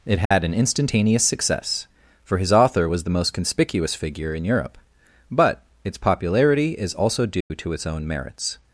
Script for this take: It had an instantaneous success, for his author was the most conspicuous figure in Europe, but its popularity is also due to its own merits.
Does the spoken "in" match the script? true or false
true